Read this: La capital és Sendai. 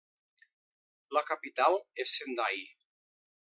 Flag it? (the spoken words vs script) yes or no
no